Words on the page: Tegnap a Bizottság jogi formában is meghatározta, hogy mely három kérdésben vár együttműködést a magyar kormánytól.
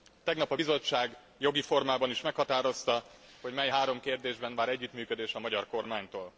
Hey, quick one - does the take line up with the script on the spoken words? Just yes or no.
yes